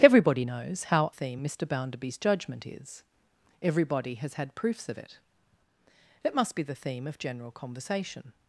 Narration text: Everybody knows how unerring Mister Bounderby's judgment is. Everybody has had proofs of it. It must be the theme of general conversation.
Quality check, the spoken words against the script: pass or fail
fail